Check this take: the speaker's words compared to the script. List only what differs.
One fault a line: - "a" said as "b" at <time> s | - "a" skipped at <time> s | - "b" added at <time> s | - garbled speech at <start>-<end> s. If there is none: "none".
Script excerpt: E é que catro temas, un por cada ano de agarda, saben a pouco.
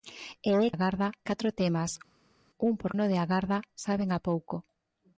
- "que" said as "agarda" at 0.7 s
- "cada" skipped at 2.9 s